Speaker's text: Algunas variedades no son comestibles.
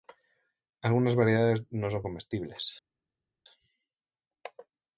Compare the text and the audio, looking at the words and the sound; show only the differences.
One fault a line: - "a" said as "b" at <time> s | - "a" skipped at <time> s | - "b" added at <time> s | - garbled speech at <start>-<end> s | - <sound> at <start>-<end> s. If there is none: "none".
none